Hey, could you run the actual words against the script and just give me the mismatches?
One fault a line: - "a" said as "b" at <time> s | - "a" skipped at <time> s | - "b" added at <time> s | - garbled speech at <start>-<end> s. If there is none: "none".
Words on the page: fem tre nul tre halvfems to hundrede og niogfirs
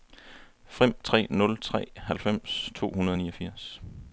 none